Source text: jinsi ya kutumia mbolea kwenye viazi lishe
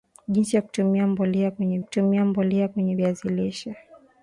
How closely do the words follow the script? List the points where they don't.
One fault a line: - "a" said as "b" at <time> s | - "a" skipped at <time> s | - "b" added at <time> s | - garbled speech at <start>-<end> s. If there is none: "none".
- "kutumia mbolea kwenye" added at 1.8 s